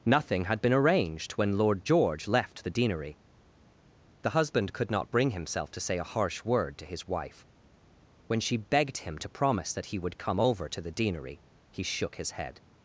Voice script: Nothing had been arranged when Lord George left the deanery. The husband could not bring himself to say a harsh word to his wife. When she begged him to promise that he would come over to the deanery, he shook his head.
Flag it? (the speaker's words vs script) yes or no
no